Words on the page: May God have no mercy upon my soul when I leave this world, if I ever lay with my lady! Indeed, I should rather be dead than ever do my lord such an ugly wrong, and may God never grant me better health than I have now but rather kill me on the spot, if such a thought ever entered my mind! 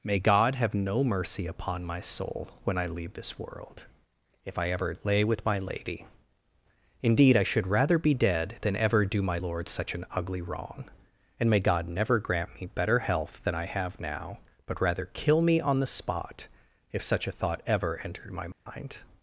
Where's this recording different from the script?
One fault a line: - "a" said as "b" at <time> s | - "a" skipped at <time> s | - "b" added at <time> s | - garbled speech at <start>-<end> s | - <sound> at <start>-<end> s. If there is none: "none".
- dropout at 18.5-18.7 s